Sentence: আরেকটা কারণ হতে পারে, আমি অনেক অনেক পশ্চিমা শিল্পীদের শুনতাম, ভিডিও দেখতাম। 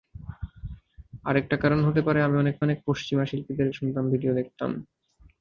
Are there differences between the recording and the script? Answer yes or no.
no